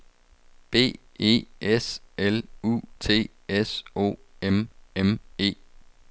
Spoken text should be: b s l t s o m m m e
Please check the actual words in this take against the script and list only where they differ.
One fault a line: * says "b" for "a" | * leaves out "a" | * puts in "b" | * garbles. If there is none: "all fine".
* puts in "e"
* puts in "u"
* leaves out "m"